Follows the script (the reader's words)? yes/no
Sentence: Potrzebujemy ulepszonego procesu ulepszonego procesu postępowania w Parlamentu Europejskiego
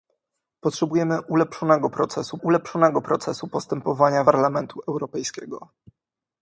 yes